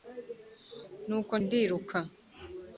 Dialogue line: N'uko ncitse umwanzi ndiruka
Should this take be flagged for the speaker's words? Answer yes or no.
yes